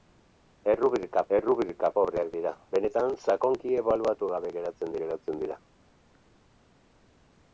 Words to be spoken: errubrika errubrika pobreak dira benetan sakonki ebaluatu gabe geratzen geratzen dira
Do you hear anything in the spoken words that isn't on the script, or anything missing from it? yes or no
no